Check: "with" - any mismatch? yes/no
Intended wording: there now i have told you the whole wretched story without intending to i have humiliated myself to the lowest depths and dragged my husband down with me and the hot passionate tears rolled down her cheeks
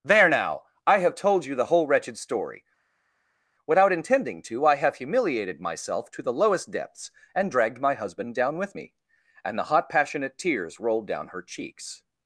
no